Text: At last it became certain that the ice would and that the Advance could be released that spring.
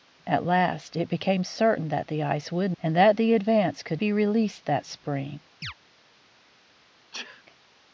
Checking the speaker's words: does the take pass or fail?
pass